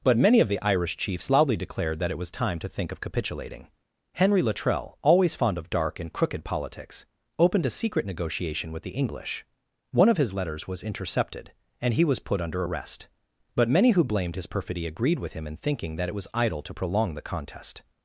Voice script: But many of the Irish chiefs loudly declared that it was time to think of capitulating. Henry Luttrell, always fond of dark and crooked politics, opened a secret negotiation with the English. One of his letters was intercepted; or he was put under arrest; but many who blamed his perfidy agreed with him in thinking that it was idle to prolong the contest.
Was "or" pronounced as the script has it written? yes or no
no